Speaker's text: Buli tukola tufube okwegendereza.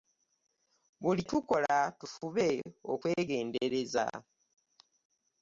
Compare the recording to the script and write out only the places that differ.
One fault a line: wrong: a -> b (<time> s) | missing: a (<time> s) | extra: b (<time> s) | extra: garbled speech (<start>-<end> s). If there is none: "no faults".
no faults